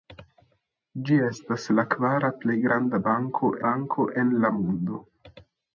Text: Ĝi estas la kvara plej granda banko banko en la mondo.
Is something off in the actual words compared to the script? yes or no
no